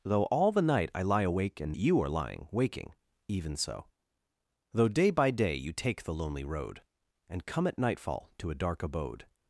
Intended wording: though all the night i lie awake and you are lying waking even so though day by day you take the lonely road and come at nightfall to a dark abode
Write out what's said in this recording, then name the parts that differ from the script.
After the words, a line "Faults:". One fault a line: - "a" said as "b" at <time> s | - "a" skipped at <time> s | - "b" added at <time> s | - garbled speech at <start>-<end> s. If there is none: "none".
though all the night i lie awake and you are lying waking even so though day by day you take the lonely road and come at nightfall to a dark abode
Faults:
none